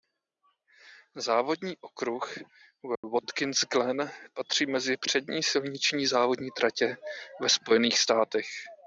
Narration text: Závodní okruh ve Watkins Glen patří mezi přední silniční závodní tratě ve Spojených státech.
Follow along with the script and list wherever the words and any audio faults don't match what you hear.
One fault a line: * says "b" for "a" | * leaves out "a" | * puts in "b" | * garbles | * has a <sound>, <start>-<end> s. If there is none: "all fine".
* has a dropout, 3.0-3.0 s